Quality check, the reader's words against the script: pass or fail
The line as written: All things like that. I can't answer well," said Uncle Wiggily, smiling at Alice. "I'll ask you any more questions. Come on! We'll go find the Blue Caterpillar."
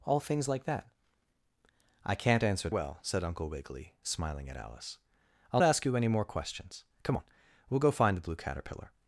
pass